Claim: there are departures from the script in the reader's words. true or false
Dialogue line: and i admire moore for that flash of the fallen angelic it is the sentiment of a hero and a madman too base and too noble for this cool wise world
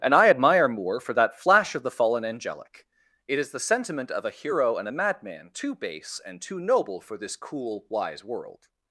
false